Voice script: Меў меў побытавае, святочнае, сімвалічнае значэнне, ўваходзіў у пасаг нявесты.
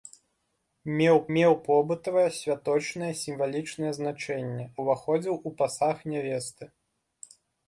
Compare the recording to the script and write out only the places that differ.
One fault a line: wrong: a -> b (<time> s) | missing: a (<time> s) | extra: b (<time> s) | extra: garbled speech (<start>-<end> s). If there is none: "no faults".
no faults